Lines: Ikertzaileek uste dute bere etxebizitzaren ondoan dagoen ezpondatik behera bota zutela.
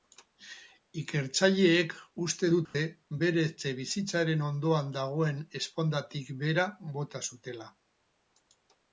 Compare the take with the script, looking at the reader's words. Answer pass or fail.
pass